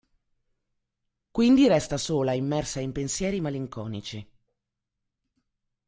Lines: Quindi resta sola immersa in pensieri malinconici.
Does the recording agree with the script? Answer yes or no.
yes